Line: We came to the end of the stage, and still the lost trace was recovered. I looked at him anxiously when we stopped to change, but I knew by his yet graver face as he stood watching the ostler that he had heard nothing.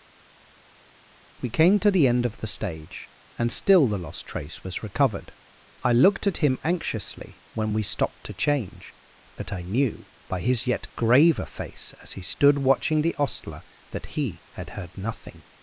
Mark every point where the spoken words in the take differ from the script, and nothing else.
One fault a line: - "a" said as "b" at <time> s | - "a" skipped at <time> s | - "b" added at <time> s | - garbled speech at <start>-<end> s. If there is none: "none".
none